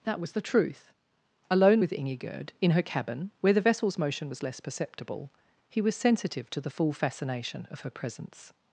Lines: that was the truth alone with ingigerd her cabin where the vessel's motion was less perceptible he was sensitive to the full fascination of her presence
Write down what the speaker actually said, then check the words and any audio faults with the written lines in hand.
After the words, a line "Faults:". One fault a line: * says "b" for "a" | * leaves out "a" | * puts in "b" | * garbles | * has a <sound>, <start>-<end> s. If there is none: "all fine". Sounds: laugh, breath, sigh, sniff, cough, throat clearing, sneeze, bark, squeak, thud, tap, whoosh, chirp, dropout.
that was the truth alone with ingigerd in her cabin where the vessel's motion was less perceptible he was sensitive to the full fascination of her presence
Faults:
* puts in "in"